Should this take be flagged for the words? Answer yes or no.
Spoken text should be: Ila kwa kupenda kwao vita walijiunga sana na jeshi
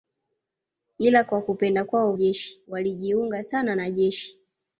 yes